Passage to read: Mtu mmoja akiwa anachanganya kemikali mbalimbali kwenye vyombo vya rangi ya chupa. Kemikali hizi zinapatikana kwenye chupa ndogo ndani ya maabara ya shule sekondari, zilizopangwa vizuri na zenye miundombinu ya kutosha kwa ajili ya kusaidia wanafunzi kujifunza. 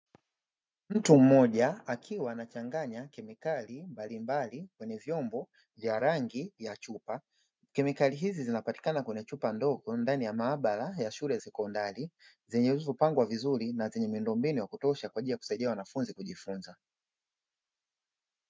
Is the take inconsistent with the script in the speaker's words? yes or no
no